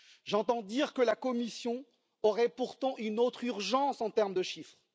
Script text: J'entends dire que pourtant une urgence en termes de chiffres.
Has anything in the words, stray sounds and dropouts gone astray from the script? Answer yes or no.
yes